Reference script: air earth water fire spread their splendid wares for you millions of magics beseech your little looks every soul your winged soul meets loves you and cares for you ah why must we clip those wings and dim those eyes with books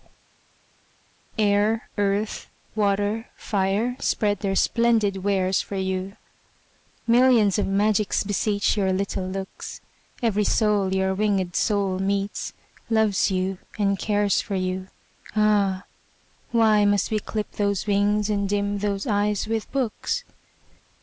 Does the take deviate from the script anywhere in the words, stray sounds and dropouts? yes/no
no